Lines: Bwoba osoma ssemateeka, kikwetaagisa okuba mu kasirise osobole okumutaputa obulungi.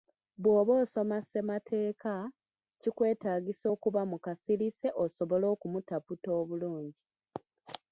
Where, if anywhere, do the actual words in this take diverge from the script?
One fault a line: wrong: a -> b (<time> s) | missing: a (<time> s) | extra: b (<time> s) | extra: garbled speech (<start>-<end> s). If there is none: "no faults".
no faults